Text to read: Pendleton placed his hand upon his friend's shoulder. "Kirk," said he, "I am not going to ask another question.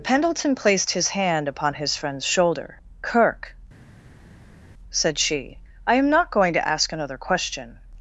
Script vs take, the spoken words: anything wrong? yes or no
yes